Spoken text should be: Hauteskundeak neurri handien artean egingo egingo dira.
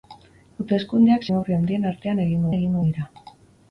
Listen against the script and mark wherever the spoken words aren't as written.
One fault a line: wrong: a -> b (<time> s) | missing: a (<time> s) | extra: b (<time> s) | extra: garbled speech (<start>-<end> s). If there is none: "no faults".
no faults